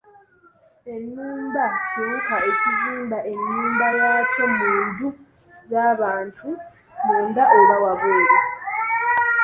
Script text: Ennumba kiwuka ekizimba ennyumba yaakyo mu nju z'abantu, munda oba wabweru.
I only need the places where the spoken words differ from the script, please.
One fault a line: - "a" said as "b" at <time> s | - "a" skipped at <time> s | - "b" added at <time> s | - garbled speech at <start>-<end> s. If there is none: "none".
none